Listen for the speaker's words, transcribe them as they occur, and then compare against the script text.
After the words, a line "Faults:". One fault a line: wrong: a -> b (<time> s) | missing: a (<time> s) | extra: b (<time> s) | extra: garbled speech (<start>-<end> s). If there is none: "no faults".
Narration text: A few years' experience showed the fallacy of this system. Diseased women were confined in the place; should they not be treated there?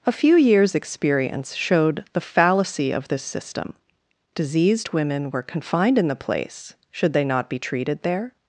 A few years' experience showed the fallacy of this system. Diseased women were confined in the place; should they not be treated there?
Faults:
no faults